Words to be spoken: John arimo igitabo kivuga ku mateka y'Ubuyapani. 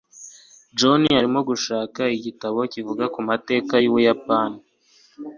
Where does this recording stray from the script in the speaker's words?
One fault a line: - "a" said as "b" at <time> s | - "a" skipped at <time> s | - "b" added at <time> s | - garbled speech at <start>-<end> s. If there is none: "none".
- "gushaka" added at 1.5 s